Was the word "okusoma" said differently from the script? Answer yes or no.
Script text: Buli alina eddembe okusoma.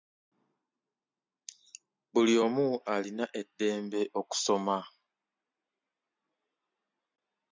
no